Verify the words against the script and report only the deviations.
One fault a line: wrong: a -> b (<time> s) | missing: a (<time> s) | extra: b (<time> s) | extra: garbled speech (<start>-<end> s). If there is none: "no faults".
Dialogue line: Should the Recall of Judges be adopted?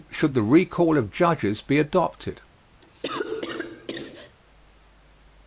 no faults